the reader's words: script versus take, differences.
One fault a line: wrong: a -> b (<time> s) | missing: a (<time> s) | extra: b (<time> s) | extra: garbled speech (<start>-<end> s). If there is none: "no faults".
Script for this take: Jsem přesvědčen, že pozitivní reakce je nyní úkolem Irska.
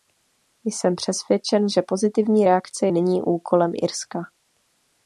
missing: je (2.9 s)